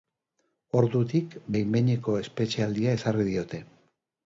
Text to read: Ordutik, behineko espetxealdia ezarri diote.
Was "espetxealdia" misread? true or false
false